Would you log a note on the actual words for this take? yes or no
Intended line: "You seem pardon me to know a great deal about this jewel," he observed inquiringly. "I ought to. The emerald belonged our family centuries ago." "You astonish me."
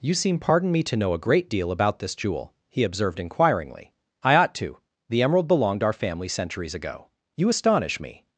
no